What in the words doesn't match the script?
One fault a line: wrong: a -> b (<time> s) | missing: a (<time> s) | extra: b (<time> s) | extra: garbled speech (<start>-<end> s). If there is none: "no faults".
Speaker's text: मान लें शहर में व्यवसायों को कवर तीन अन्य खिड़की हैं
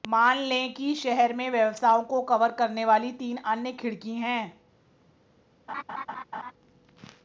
extra: कि (0.7 s)
extra: करने वाली (2.5 s)